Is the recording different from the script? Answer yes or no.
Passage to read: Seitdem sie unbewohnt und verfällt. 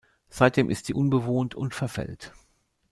yes